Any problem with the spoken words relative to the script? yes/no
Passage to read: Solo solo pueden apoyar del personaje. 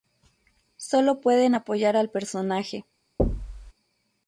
yes